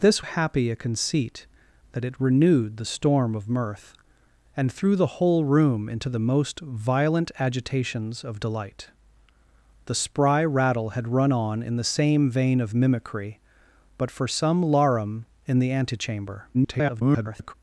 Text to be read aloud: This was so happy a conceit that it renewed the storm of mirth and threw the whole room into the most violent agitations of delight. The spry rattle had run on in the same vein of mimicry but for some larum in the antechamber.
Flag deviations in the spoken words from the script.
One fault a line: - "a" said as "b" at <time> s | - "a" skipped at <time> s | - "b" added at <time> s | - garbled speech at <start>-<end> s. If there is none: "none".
- "was so" skipped at 0.2 s
- garbled speech at 16.5-17.5 s